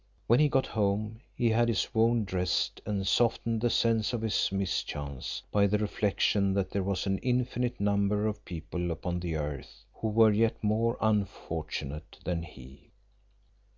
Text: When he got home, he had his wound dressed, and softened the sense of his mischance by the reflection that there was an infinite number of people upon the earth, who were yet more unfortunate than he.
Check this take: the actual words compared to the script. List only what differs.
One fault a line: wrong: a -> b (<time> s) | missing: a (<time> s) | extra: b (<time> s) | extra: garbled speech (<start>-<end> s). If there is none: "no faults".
no faults